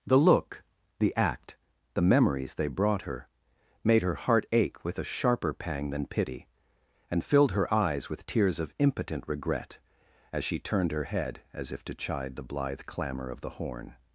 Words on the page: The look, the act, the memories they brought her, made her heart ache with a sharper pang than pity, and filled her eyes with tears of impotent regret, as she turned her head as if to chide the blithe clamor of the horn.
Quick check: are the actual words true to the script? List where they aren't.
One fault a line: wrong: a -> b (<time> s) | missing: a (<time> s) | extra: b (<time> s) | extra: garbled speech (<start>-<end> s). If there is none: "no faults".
no faults